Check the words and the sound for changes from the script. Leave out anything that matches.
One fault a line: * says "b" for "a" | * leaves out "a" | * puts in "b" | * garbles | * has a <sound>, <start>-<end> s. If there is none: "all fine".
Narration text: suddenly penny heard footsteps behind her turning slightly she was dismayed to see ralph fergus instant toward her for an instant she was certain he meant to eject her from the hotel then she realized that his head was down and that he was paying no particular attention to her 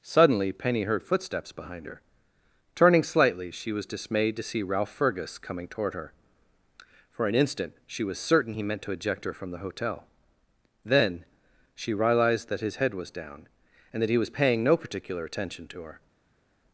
* says "coming" for "instant"